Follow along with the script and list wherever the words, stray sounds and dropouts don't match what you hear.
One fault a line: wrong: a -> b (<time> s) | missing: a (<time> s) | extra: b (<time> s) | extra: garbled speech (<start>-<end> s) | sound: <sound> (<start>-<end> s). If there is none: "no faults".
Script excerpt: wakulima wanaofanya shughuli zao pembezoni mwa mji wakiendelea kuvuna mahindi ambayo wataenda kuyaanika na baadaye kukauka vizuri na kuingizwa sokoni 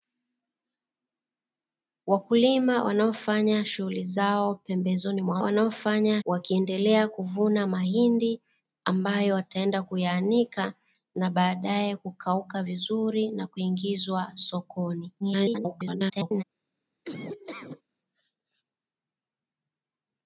wrong: mji -> wanaofanya (5.4 s)
extra: garbled speech (15.2-16.4 s)
sound: laugh (17.0-17.8 s)